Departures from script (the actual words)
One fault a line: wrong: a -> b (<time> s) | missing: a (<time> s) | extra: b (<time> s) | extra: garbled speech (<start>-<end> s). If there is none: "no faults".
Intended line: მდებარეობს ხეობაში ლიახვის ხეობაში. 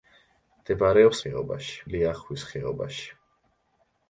no faults